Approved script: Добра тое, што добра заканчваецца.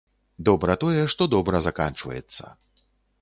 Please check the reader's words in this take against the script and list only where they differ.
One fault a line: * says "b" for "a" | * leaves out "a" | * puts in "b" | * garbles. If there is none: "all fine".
all fine